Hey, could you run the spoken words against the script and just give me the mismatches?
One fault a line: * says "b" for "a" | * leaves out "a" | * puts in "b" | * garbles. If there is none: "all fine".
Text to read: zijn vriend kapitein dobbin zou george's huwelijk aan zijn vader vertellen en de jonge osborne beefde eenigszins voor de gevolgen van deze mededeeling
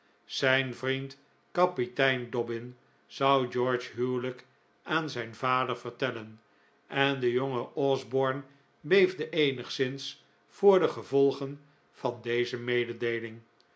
all fine